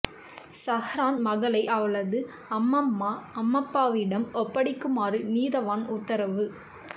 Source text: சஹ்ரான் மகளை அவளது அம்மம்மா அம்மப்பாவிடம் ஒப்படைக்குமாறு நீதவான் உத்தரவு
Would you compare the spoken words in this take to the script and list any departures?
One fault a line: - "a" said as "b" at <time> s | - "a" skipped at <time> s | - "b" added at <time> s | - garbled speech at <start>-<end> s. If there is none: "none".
none